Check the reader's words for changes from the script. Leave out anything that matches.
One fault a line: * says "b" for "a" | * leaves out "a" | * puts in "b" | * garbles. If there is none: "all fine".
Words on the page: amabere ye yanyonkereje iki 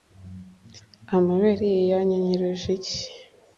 all fine